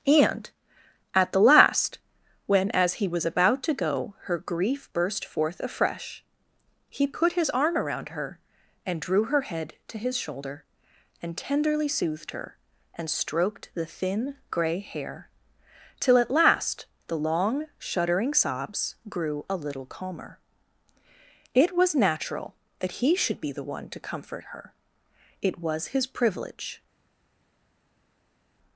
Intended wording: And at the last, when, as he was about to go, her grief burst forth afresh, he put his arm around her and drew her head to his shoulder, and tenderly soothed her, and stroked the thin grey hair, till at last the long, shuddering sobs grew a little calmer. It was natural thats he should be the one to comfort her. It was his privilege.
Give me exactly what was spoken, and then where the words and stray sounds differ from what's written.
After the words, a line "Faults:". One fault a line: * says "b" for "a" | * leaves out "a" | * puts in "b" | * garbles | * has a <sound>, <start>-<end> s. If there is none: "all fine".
And at the last, when, as he was about to go, her grief burst forth afresh, he put his arm around her and drew her head to his shoulder, and tenderly soothed her, and stroked the thin grey hair, till at last the long, shuddering sobs grew a little calmer. It was natural that he should be the one to comfort her. It was his privilege.
Faults:
* says "that" for "thats"